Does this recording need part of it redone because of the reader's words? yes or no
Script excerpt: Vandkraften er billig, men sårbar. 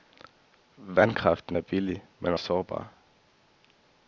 no